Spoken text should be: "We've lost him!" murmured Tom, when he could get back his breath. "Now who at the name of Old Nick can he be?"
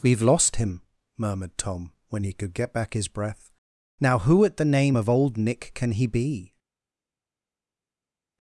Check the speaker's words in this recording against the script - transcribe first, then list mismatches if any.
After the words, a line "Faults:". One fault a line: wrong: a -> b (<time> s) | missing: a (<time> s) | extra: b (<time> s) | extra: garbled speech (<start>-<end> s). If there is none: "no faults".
"We've lost him!" murmured Tom, when he could get back his breath. "Now who at the name of Old Nick can he be?"
Faults:
no faults